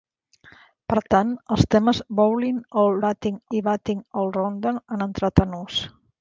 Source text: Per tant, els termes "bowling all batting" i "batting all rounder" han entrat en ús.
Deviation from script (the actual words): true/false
false